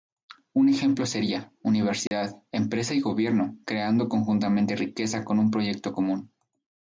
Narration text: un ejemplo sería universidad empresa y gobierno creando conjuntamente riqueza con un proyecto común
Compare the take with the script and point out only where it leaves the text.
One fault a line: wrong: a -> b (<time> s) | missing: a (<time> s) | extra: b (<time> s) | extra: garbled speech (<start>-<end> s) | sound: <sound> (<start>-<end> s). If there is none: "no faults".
sound: dropout (2.1-2.1 s)